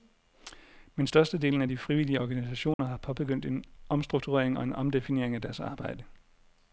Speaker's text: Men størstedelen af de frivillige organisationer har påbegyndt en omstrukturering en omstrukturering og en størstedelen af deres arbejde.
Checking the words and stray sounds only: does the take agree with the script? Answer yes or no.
no